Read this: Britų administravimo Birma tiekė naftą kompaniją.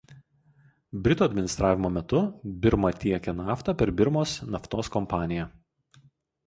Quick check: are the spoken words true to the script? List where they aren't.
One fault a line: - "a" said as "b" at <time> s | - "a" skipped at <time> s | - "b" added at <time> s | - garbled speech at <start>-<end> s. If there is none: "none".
- "metu" added at 2.0 s
- "per Birmos naftos" added at 3.8 s